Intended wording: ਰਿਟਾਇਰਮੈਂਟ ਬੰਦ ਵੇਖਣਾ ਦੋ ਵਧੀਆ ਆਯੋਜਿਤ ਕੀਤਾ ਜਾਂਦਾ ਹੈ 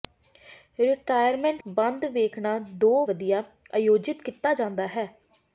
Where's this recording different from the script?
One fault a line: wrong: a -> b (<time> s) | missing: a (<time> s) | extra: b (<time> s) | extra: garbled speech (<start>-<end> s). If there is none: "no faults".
no faults